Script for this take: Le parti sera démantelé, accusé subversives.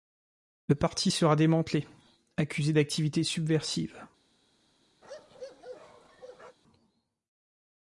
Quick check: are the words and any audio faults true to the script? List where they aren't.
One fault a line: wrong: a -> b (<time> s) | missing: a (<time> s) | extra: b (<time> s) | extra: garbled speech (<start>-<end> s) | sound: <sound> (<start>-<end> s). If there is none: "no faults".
extra: d'activités (2.7 s)
sound: bark (5.0-6.6 s)